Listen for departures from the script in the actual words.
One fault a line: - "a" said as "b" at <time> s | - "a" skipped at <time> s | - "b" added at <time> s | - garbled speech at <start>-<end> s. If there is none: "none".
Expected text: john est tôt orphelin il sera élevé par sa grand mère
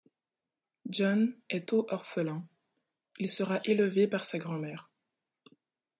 none